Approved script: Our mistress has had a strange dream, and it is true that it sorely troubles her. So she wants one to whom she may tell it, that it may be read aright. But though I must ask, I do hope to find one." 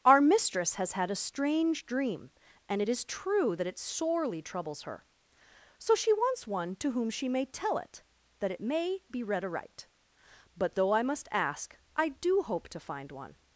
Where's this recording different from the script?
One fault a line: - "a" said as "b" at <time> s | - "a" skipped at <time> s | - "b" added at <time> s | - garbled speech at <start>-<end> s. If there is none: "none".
none